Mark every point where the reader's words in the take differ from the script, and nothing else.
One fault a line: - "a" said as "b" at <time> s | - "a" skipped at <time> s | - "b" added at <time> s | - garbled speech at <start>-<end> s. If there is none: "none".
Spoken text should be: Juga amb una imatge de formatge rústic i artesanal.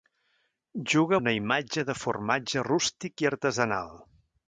- "amb" skipped at 1.2 s